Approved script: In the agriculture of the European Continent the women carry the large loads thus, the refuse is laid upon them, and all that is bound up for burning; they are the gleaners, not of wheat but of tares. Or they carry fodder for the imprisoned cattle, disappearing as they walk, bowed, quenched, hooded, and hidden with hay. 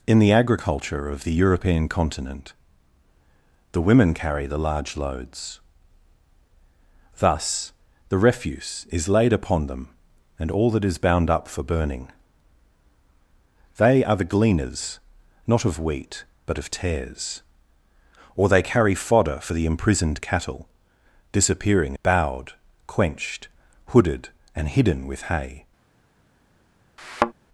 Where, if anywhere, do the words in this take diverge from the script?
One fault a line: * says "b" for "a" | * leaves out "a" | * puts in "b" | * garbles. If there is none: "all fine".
* leaves out "as they walk"